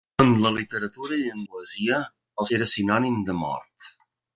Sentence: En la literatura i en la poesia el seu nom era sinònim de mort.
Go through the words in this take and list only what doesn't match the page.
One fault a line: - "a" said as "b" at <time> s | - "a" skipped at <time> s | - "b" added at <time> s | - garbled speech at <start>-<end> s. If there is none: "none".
- "la" skipped at 1.4 s
- "seu nom" skipped at 2.5 s